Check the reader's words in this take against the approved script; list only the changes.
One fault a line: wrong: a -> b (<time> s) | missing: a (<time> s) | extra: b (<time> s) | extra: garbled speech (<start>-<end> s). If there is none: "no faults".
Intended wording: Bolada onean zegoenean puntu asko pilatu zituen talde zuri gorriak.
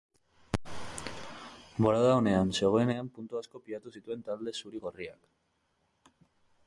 no faults